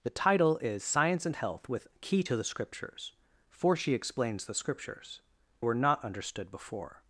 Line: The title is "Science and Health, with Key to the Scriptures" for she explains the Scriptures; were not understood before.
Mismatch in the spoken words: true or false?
false